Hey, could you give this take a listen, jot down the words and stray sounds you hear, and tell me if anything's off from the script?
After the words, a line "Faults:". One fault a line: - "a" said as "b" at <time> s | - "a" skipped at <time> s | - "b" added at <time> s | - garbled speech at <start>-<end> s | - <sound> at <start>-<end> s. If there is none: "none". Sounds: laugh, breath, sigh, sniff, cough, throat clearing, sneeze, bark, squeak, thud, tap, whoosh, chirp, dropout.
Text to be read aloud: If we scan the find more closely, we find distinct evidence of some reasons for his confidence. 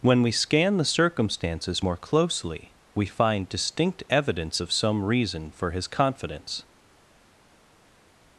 When we scan the circumstances more closely, we find distinct evidence of some reason for his confidence.
Faults:
- "If" said as "When" at 0.0 s
- "find" said as "circumstances" at 0.8 s
- "reasons" said as "reason" at 5.0 s